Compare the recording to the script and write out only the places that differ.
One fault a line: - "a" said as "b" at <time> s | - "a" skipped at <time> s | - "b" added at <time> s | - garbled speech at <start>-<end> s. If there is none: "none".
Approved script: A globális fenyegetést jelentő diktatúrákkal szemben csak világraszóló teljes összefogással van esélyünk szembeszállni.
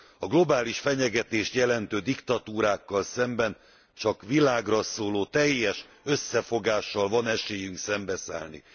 none